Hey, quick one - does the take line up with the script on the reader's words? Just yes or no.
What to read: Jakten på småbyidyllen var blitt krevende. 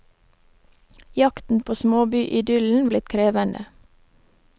no